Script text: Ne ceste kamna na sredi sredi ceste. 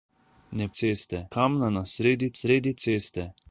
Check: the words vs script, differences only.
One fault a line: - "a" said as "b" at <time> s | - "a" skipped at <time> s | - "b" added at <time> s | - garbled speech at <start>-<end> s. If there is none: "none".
none